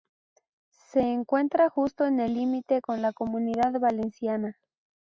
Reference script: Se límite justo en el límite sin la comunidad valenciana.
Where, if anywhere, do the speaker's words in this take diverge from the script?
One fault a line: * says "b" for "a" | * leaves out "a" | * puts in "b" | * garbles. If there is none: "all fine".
* says "encuentra" for "límite"
* says "con" for "sin"